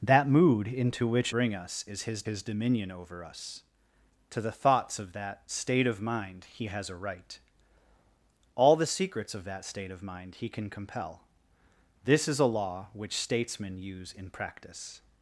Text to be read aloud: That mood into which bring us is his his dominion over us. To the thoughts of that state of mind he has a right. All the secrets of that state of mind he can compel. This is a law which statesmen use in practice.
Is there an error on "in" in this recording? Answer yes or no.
no